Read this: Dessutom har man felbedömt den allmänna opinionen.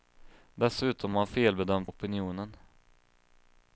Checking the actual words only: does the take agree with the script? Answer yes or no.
no